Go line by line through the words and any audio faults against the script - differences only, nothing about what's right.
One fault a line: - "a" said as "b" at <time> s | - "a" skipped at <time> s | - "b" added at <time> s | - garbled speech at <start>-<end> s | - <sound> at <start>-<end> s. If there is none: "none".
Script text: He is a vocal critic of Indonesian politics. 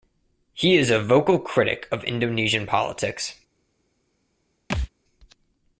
- thud at 4.7-4.9 s